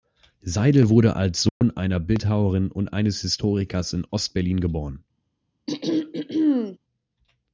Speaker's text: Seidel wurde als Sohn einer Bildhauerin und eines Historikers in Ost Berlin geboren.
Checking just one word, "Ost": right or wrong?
right